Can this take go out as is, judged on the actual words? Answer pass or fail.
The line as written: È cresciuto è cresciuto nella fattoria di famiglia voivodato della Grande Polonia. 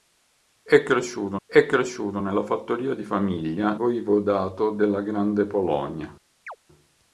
pass